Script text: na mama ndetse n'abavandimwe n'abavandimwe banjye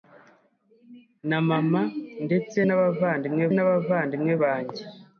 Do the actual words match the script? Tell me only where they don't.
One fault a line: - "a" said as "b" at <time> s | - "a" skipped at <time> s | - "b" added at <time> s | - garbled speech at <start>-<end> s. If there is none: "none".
none